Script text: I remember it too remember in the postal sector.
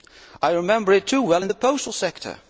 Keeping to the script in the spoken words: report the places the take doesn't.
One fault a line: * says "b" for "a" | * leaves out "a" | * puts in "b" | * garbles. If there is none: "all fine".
* says "well" for "remember"